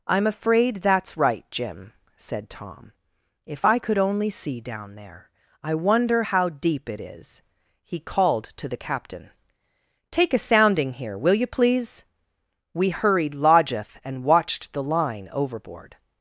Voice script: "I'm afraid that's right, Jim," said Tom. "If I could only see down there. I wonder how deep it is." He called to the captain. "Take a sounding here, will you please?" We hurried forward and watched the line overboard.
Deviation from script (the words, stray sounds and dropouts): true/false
true